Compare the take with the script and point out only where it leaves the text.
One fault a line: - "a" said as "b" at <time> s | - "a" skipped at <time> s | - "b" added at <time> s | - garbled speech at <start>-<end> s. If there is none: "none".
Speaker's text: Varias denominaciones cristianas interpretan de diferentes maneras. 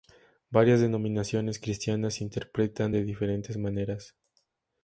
none